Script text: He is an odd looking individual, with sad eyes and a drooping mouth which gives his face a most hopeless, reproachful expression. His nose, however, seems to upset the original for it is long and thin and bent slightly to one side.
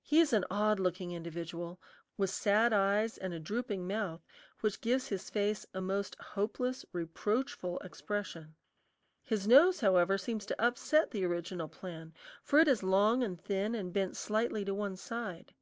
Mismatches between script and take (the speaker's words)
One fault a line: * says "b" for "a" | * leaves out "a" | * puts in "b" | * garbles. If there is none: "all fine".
* puts in "plan"